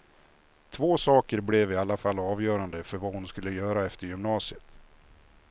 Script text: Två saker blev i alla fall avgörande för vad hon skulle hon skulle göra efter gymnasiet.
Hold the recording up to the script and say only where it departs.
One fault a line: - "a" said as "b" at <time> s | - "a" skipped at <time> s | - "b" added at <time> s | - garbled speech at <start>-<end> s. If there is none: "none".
- "hon skulle" skipped at 3.5 s